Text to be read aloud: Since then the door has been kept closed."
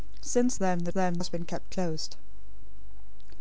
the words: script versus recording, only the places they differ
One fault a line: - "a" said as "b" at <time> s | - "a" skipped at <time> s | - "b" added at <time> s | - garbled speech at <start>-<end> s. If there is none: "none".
- "door" said as "then" at 0.9 s